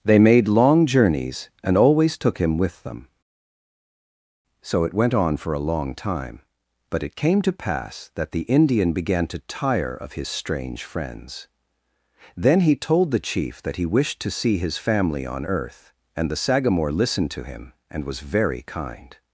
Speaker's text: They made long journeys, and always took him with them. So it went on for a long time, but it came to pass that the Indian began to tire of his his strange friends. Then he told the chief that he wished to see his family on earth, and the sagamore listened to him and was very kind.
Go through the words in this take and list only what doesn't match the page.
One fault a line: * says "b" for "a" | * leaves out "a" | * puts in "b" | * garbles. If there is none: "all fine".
* leaves out "his"